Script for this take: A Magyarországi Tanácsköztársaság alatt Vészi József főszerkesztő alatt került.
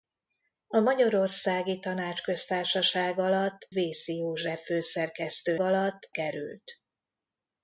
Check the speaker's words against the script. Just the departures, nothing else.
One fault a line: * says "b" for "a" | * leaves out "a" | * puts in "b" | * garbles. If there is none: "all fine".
all fine